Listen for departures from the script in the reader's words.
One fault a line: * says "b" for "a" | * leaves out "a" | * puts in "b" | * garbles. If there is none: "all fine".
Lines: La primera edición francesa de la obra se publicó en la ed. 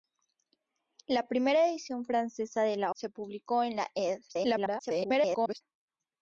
* leaves out "obra"
* garbles